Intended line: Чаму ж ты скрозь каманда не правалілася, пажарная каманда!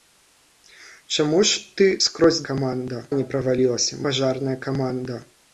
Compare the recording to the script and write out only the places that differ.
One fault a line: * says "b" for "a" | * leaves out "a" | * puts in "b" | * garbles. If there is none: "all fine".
all fine